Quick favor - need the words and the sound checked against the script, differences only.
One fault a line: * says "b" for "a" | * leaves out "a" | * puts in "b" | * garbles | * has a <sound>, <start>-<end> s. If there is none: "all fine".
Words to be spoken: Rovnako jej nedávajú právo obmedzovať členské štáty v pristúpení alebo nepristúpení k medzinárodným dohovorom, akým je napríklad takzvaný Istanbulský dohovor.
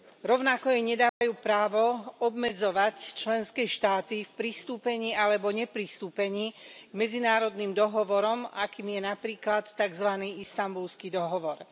* has a dropout, 1.1-1.2 s